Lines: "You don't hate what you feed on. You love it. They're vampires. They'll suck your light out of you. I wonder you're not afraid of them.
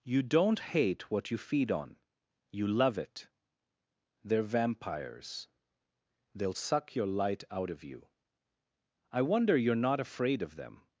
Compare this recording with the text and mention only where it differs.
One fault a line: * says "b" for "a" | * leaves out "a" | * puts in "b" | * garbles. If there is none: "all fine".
all fine